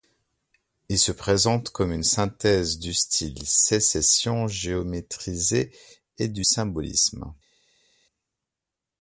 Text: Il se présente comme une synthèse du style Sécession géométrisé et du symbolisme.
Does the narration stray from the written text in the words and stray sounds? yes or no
no